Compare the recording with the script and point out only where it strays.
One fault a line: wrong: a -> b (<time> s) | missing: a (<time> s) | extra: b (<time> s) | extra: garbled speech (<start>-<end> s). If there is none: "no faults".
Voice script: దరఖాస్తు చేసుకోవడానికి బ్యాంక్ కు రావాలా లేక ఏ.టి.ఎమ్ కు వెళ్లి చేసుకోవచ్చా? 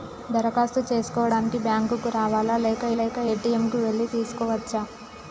extra: లేక (3.0 s)